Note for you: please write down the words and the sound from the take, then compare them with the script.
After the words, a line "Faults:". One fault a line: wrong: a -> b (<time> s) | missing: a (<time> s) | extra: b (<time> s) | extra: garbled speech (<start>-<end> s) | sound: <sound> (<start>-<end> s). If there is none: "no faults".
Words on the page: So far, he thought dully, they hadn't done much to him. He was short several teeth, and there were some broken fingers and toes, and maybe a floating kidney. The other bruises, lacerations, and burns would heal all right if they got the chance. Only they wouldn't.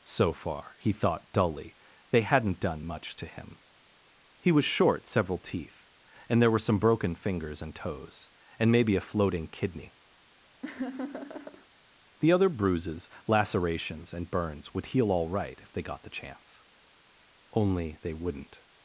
So far, he thought dully, they hadn't done much to him. He was short several teeth, and there were some broken fingers and toes, and maybe a floating kidney. The other bruises, lacerations, and burns would heal all right if they got the chance. Only they wouldn't.
Faults:
sound: laugh (10.6-11.7 s)